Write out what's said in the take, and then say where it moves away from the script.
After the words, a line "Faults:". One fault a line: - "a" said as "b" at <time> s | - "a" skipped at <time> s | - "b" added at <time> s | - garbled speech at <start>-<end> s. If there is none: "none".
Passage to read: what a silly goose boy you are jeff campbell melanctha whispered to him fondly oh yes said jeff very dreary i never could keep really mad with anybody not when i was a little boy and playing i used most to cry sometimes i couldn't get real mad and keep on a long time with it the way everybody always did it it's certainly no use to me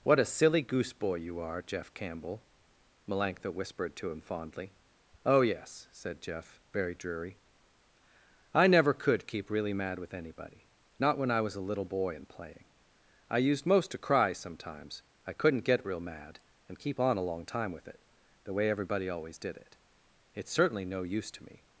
what a silly goose boy you are jeff campbell melanctha whispered to him fondly oh yes said jeff very dreary i never could keep really mad with anybody not when i was a little boy and playing i used most to cry sometimes i couldn't get real mad and keep on a long time with it the way everybody always did it it's certainly no use to me
Faults:
none